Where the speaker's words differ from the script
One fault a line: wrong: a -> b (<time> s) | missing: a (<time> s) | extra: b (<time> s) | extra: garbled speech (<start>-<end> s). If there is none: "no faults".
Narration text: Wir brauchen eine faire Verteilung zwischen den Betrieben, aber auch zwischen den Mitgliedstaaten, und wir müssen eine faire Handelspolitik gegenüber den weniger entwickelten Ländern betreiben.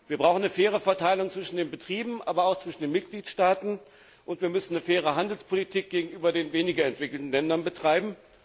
no faults